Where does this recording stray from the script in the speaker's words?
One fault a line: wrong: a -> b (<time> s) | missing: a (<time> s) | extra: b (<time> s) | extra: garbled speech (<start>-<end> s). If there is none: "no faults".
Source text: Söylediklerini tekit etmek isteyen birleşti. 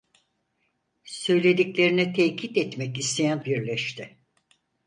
no faults